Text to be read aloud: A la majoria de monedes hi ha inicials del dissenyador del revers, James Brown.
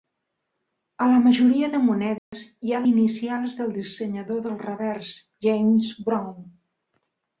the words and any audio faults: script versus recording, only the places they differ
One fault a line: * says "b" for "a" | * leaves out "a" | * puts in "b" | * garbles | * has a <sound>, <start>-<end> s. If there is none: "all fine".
* has a dropout, 2.2-2.3 s